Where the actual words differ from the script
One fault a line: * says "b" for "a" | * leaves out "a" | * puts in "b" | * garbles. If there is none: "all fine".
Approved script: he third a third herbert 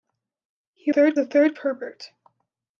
all fine